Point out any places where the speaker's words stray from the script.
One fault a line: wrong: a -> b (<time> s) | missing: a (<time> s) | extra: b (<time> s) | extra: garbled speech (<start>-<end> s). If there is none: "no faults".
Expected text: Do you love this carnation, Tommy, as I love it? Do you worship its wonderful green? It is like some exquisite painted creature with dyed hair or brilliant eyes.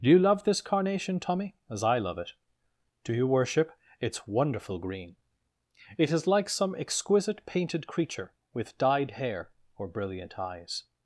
no faults